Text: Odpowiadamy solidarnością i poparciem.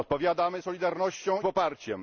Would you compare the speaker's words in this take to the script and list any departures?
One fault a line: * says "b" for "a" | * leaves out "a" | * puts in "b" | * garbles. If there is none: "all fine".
* leaves out "i"